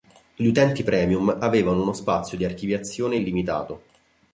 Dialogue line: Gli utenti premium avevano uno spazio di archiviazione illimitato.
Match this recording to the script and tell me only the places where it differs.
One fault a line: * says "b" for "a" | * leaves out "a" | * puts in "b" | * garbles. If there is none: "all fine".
all fine